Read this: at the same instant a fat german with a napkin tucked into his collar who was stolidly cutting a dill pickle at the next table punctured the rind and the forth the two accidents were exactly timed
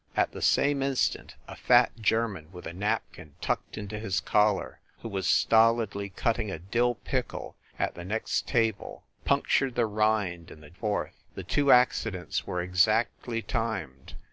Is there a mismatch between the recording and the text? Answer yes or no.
no